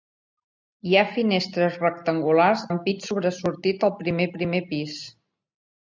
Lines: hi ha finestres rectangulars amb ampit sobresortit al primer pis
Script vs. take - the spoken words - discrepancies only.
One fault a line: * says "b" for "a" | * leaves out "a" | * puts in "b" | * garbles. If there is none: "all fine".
* leaves out "amb"
* puts in "primer"